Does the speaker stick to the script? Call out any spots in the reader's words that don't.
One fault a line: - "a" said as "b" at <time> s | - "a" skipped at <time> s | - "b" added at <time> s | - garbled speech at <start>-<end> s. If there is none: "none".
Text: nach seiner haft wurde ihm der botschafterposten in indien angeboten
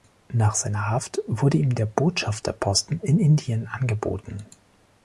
none